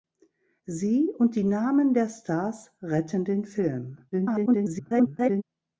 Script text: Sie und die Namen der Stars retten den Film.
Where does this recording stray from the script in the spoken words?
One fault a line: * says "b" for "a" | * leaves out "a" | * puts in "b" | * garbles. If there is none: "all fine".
* garbles